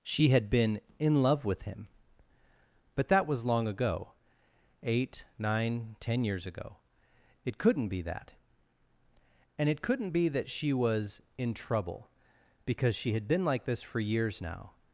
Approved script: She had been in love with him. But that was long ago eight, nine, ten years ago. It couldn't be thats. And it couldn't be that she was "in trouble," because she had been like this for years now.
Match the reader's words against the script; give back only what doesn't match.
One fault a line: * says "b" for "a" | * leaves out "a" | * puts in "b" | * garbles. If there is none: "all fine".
* says "that" for "thats"